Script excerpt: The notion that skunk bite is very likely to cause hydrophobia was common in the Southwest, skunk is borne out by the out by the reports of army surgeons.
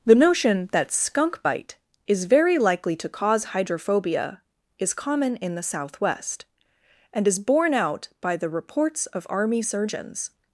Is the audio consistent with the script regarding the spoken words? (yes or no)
no